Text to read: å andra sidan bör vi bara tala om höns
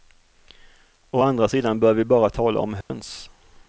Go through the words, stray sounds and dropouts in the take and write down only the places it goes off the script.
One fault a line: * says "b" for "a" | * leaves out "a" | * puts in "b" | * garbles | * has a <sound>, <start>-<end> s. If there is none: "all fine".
* has a dropout, 2.8-2.9 s